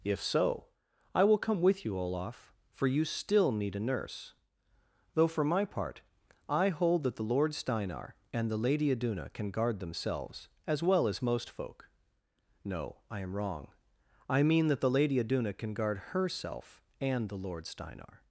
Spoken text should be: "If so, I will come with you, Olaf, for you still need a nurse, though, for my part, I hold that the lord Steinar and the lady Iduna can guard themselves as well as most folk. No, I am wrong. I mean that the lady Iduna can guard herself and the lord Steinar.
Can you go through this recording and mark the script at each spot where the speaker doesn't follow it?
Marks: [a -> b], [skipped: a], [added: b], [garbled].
"If so, I will come with you, Olaf, for you still need a nurse, though, for my part, I hold that the lord Steinar and the lady Iduna can guard themselves as well as most folk. No, I am wrong. I mean that the lady Iduna can guard herself and the lord Steinar.